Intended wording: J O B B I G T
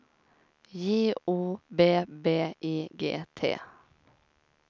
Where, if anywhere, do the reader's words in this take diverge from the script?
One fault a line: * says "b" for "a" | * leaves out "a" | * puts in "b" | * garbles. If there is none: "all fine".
all fine